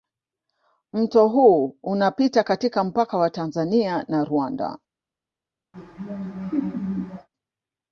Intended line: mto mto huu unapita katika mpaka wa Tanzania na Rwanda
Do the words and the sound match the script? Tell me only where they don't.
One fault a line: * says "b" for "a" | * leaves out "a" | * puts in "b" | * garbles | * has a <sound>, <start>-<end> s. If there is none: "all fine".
* leaves out "mto"
* has a laugh, 5.7-7.3 s